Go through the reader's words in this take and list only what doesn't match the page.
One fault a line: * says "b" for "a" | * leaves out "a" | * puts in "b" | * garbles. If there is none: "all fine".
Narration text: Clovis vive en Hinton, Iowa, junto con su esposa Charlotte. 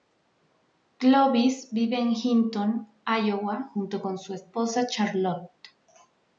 all fine